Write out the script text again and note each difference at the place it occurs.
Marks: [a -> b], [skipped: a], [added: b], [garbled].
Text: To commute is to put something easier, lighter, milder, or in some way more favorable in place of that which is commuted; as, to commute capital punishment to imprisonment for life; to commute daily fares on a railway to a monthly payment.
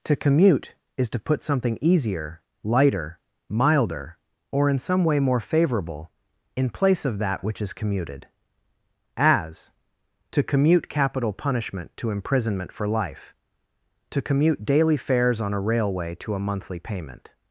To commute is to put something easier, lighter, milder, or in some way more favorable in place of that which is commuted; as, to commute capital punishment to imprisonment for life; to commute daily fares on a railway to a monthly payment.